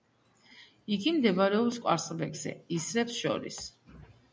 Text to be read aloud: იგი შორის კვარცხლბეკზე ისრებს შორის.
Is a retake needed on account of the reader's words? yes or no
yes